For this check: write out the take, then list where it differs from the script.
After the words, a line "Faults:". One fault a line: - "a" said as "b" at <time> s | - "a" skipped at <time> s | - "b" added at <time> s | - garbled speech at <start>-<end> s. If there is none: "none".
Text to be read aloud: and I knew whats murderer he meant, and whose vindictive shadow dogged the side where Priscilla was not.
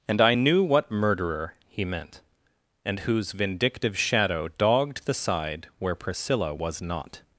and I knew what murderer he meant, and whose vindictive shadow dogged the side where Priscilla was not.
Faults:
- "whats" said as "what" at 0.6 s